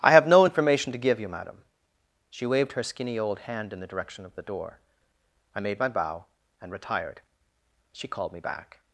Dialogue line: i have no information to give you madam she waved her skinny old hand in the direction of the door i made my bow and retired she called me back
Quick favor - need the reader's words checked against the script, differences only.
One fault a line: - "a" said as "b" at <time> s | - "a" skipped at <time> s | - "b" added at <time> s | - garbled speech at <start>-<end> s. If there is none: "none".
none